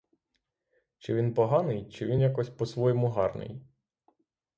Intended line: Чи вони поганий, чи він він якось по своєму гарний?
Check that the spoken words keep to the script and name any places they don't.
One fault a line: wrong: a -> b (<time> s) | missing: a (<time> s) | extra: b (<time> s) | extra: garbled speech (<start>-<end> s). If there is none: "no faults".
wrong: вони -> він (1.1 s)
missing: він (2.2 s)